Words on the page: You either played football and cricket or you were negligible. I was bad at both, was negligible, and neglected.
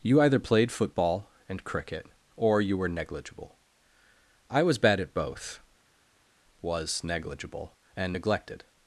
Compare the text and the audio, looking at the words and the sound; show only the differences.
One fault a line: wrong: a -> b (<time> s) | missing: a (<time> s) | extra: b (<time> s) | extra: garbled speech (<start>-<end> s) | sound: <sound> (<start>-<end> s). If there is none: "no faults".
no faults